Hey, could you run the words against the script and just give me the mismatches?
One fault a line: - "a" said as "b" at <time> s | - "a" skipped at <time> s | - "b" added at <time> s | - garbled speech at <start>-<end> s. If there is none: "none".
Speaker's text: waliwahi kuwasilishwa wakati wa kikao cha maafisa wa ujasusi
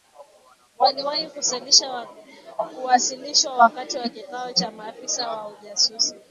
none